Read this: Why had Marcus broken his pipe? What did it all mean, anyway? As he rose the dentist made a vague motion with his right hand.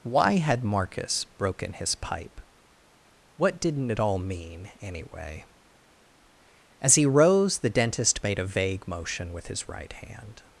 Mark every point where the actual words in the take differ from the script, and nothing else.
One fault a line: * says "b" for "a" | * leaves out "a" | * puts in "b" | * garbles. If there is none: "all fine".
* says "didn't" for "did"